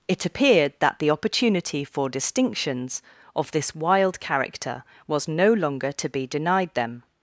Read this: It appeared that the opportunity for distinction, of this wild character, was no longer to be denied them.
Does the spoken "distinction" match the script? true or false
false